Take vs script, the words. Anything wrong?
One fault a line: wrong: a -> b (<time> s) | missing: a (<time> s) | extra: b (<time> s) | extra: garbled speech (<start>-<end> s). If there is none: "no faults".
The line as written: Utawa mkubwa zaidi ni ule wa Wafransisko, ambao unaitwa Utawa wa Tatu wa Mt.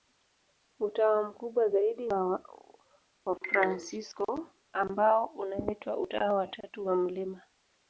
missing: ni ule (2.1 s)